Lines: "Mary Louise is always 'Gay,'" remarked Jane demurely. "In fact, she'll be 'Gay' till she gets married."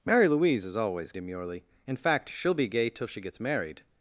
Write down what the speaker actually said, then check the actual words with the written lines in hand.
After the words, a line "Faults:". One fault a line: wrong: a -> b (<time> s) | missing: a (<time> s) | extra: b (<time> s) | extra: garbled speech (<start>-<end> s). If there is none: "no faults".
"Mary Louise is always 'Demurely. "In fact, she'll be 'Gay' till she gets married."
Faults:
missing: Gay remarked Jane (1.1 s)